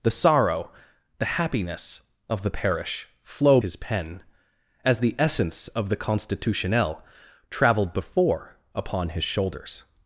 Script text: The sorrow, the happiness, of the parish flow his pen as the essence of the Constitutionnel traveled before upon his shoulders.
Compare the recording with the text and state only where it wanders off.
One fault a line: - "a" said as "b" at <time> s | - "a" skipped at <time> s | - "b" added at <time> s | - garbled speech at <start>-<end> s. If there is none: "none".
none